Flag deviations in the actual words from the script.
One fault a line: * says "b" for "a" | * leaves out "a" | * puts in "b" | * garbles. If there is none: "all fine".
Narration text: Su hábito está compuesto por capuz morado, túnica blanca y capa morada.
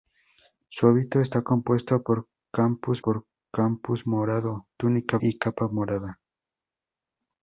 * puts in "por capuz"
* leaves out "blanca"